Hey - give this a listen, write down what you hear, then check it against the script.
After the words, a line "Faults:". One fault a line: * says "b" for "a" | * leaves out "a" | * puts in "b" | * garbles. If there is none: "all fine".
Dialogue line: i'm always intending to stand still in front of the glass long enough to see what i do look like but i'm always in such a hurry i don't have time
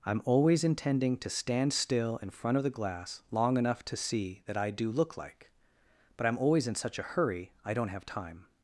i'm always intending to stand still in front of the glass long enough to see that i do look like but i'm always in such a hurry i don't have time
Faults:
* says "that" for "what"